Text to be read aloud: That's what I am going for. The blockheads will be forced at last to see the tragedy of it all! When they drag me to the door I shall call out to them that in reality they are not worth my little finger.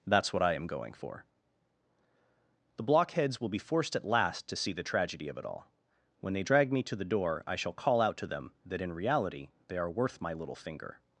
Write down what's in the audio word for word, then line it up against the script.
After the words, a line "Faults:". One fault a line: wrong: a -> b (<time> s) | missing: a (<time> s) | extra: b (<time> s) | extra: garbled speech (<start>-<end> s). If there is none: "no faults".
That's what I am going for. The blockheads will be forced at last to see the tragedy of it all! When they drag me to the door I shall call out to them that in reality they are worth my little finger.
Faults:
missing: not (9.9 s)